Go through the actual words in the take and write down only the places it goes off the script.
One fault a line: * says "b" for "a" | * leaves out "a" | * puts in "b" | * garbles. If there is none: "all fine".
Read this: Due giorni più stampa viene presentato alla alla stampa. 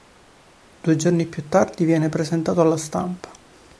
* says "tardi" for "stampa"
* leaves out "alla"